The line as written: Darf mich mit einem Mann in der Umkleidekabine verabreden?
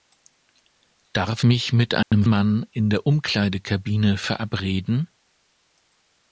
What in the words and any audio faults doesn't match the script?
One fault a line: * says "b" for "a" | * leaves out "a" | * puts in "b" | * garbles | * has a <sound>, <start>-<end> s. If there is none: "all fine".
* has a dropout, 2.0-2.1 s